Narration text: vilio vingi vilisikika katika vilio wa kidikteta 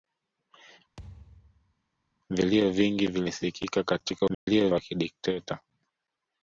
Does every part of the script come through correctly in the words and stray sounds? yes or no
no